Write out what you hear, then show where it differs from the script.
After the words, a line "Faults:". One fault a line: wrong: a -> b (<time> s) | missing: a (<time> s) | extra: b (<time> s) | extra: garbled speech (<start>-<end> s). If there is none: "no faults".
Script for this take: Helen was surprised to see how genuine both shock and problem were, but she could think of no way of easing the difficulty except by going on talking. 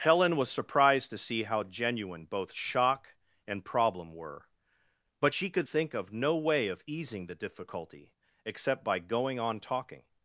Helen was surprised to see how genuine both shock and problem were, but she could think of no way of easing the difficulty except by going on talking.
Faults:
no faults